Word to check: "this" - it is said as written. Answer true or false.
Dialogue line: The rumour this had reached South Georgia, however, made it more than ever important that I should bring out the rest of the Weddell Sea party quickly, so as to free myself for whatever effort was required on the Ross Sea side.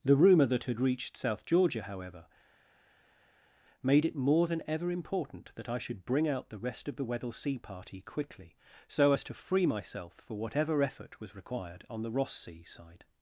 false